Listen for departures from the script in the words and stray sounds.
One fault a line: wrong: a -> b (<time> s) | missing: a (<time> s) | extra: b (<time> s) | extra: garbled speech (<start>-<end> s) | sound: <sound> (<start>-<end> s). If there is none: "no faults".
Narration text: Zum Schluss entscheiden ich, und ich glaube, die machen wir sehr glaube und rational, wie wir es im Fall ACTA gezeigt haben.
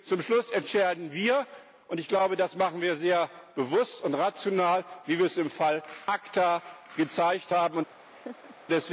wrong: ich -> wir (1.1 s)
wrong: die -> das (2.4 s)
wrong: glaube -> bewusst (3.5 s)
sound: laugh (8.1-8.6 s)